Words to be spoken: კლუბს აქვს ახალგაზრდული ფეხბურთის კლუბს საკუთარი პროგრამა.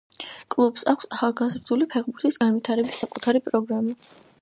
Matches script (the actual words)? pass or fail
fail